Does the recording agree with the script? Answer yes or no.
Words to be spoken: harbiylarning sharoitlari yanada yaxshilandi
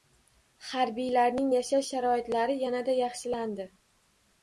no